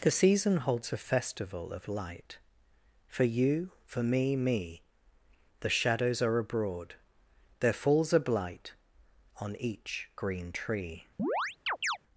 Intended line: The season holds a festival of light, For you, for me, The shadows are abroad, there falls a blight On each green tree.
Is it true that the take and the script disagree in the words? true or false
true